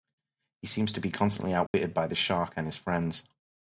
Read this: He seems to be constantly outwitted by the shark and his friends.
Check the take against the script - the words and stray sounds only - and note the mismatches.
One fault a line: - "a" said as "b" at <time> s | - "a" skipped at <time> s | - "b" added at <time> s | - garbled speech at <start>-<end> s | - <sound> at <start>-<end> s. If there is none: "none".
- dropout at 1.7-1.7 s